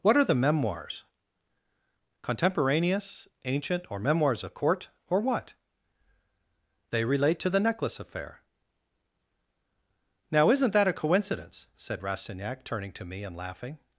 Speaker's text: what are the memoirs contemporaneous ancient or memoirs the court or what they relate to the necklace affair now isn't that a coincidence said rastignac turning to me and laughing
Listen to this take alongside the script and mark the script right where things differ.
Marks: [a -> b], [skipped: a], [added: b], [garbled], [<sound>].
what are the memoirs contemporaneous ancient or memoirs the court or what they relate to the necklace affair now isn't that a coincidence said rastignac turning to me and laughing